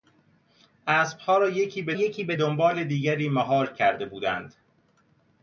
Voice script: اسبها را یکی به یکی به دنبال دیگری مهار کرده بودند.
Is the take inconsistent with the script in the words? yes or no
no